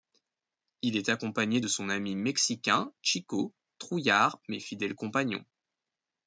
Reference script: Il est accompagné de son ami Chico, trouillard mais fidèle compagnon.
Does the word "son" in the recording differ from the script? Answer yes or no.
no